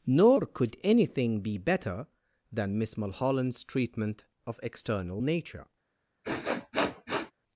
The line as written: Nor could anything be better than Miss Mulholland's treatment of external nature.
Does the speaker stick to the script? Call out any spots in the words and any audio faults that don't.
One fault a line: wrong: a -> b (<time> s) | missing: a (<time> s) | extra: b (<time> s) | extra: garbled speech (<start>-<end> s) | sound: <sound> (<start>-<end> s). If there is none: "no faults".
sound: sniff (6.2-7.3 s)